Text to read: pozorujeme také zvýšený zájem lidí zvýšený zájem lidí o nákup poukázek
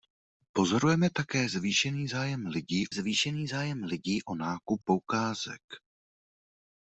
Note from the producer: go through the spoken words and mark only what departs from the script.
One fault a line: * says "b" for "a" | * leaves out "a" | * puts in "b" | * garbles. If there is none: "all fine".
all fine